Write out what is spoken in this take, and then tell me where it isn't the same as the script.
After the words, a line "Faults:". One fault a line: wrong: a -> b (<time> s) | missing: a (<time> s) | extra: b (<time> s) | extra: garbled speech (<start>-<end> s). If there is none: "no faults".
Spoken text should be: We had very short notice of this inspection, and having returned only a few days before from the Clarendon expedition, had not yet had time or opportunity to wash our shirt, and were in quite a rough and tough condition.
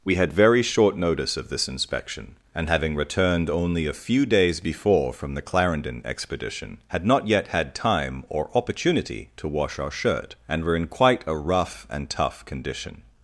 We had very short notice of this inspection, and having returned only a few days before from the Clarendon expedition, had not yet had time or opportunity to wash our shirt, and were in quite a rough and tough condition.
Faults:
no faults